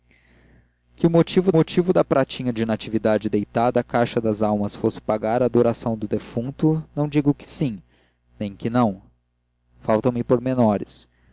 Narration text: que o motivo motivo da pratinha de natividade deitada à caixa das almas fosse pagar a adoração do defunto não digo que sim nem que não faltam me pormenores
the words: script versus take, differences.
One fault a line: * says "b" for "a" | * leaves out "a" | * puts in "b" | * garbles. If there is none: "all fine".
all fine